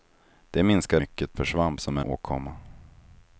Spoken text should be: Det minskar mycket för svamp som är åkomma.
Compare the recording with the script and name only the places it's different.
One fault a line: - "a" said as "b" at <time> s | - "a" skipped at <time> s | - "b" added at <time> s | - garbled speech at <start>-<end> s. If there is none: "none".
none